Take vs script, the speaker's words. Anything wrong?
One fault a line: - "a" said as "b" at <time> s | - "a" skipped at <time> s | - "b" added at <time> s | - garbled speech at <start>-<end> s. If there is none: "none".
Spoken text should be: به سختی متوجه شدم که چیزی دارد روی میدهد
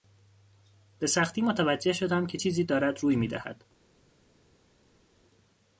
none